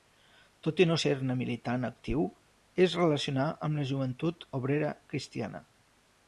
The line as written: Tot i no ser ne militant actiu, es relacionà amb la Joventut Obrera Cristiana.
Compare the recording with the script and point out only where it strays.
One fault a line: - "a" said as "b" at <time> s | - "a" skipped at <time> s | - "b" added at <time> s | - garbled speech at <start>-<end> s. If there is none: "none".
none